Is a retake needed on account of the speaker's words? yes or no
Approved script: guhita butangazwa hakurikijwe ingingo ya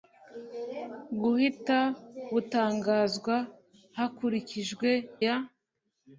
yes